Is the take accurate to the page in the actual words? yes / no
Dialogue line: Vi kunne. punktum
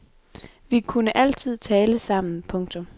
no